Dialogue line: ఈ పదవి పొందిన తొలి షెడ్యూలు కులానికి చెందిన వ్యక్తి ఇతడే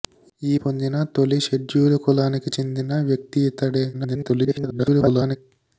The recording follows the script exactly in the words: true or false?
false